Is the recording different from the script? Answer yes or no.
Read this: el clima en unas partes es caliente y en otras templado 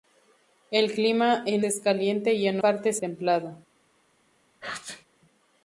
yes